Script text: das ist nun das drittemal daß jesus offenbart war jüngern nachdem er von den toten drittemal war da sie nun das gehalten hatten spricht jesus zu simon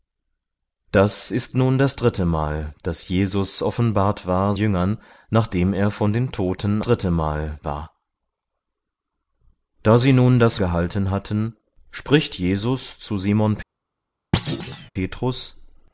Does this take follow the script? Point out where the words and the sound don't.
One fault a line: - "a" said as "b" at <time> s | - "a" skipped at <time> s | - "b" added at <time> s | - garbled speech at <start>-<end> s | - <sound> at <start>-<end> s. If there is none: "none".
- thud at 14.3-14.9 s